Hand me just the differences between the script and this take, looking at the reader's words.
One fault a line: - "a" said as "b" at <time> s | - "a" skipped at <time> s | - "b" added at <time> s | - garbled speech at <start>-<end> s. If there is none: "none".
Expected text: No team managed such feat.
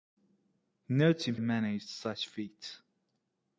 none